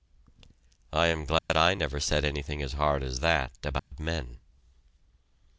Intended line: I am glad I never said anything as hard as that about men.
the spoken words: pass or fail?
pass